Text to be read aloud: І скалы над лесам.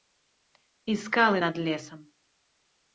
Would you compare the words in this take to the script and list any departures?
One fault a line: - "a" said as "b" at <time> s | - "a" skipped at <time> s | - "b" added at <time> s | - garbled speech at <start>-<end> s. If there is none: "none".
none